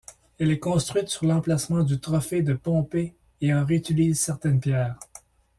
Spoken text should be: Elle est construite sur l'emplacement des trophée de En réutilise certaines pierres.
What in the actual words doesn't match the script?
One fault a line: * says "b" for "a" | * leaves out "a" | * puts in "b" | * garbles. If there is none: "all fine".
* says "du" for "des"
* puts in "Pompée et"